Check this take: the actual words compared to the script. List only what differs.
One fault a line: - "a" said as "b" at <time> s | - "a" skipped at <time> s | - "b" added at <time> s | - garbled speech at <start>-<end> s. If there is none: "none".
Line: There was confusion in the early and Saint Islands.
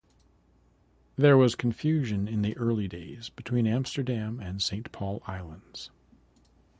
- "days between Amsterdam" added at 2.8 s
- "Paul" added at 4.9 s